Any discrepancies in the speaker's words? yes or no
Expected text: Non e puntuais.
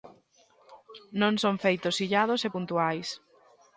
yes